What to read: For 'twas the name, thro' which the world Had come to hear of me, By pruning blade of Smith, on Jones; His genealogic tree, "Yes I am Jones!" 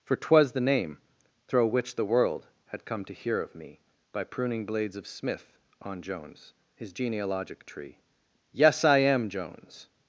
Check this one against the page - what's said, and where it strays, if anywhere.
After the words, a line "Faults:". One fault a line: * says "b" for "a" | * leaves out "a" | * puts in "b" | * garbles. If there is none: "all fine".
For 'twas the name, thro' which the world Had come to hear of me, By pruning blades of Smith, on Jones; His genealogic tree, "Yes I am Jones!"
Faults:
* says "blades" for "blade"